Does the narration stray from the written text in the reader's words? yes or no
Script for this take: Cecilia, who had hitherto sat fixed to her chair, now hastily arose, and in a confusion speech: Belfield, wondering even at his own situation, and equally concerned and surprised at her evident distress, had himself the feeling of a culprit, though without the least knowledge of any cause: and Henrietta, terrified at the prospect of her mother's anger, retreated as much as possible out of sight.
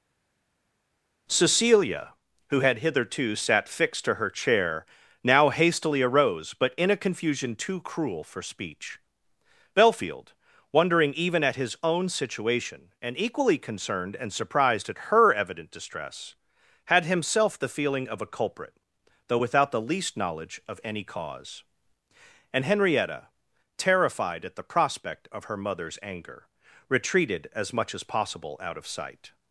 yes